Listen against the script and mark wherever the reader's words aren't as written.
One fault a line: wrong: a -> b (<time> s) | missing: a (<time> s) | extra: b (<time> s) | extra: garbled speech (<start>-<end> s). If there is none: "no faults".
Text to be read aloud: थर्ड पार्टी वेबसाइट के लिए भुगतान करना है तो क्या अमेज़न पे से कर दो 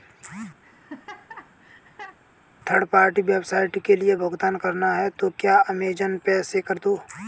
no faults